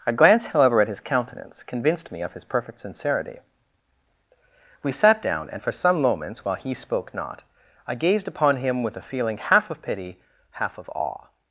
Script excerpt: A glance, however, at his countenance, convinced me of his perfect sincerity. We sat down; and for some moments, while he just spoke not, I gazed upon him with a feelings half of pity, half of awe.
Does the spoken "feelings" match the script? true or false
false